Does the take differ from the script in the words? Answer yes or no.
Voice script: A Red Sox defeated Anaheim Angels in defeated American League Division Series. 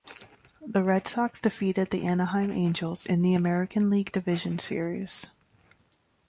yes